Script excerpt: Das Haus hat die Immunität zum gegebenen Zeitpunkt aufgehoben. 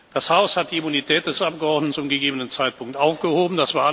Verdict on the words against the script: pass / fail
fail